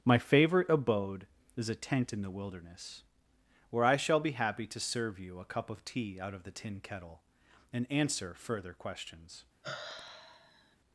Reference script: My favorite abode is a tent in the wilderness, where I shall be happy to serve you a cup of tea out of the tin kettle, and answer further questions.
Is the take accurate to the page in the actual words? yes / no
yes